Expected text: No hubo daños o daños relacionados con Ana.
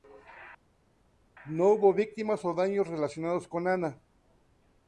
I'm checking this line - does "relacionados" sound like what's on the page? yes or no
yes